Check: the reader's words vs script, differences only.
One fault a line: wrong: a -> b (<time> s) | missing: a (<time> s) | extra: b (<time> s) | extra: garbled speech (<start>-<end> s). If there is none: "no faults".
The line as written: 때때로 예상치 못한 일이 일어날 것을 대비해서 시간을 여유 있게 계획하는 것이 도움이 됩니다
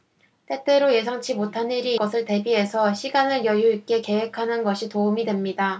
missing: 일어날 (2.0 s)